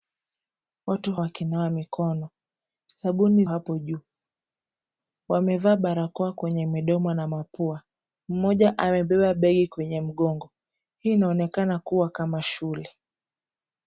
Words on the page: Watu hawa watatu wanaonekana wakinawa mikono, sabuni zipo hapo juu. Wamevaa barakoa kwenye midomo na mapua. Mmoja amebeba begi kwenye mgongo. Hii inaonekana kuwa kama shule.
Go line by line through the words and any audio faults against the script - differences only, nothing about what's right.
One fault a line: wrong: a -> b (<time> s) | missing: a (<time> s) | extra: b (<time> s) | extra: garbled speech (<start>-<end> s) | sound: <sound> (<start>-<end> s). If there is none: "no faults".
missing: hawa watatu wanaonekana (1.1 s)
missing: zipo (3.4 s)